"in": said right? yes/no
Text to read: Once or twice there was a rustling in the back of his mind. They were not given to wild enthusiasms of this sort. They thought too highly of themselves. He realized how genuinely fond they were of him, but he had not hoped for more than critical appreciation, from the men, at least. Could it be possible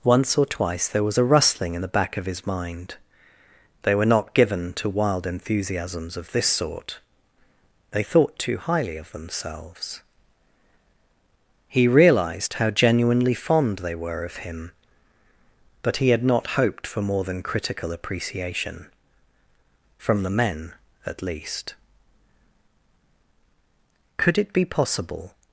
yes